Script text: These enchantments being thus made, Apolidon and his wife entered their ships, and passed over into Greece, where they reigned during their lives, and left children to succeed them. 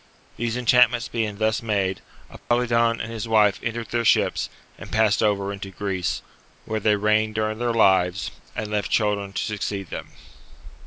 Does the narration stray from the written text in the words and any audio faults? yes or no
yes